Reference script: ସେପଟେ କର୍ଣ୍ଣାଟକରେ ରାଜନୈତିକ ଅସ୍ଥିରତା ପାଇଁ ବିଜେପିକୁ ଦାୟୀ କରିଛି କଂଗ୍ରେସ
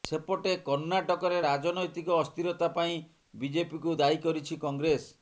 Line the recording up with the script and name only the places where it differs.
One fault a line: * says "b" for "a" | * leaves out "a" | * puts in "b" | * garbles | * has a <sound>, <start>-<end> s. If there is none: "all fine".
all fine